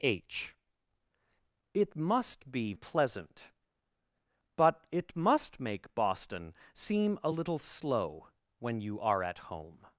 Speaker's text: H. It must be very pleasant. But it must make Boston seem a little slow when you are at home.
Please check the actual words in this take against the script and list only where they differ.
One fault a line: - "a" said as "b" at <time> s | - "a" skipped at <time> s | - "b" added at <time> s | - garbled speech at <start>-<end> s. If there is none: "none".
- "very" skipped at 2.7 s